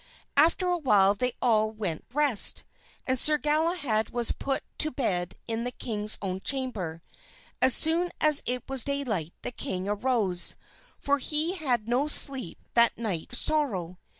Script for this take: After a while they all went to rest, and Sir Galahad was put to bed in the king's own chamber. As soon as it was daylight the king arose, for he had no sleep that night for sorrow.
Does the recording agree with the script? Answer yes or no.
no